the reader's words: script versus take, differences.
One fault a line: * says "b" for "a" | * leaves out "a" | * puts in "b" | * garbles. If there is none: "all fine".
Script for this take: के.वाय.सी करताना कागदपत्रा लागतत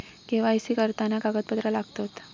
all fine